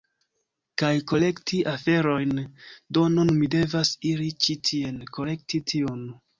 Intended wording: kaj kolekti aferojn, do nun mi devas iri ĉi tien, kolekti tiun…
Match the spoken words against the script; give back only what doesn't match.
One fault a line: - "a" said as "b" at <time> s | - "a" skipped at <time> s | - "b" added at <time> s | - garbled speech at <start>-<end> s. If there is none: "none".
none